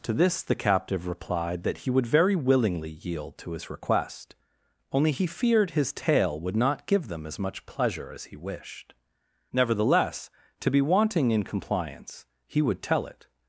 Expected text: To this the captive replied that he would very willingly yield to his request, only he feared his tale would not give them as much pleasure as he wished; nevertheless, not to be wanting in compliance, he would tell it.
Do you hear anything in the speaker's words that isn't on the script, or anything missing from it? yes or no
yes